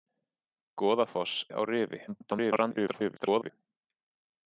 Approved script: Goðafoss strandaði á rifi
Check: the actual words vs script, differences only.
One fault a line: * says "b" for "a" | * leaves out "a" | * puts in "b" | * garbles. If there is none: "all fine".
* leaves out "strandaði"
* garbles